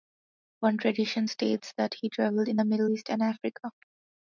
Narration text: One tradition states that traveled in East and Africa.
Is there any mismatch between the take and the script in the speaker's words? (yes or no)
yes